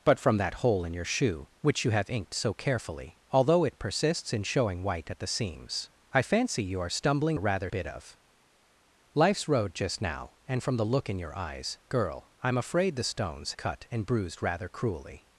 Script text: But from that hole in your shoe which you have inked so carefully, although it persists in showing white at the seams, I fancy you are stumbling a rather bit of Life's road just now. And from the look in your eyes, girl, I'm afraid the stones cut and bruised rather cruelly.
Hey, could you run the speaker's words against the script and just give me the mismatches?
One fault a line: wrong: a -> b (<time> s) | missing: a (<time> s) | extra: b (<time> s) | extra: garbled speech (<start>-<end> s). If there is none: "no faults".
no faults